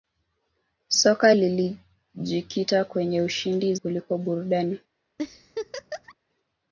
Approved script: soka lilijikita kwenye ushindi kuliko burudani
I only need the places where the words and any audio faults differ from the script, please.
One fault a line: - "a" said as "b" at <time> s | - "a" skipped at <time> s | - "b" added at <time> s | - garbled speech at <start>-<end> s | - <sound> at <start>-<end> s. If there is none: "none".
- laugh at 5.2-6.2 s